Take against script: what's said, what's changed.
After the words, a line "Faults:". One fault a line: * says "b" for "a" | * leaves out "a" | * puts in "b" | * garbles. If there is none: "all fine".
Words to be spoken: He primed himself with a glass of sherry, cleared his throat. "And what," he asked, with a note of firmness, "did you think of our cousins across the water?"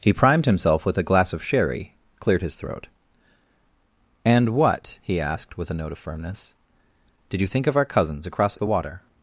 He primed himself with a glass of sherry, cleared his throat. "And what," he asked, with a note of firmness, "did you think of our cousins across the water?"
Faults:
all fine